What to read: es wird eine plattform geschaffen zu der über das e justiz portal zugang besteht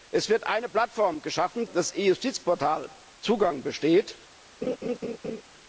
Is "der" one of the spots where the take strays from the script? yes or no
yes